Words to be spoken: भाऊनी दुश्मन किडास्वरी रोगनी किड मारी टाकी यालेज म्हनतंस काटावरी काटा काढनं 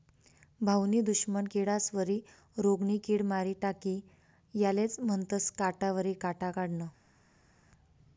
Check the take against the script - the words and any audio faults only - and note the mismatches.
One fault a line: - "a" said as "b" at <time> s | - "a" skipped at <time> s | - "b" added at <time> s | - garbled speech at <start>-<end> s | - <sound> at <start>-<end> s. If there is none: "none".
none